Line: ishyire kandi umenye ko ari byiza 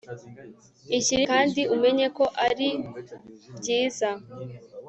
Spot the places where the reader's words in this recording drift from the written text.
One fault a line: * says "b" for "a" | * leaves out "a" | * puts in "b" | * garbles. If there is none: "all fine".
all fine